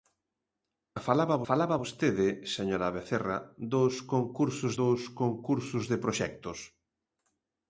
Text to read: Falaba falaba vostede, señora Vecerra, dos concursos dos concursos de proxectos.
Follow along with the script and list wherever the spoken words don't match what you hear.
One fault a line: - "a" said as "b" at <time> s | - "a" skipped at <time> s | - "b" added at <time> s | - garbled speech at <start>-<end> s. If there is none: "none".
none